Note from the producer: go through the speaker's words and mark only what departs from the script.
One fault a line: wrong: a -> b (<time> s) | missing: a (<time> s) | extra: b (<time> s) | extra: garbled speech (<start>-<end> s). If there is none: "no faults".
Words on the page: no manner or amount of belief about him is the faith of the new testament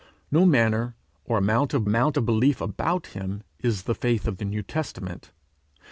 extra: amount of (1.8 s)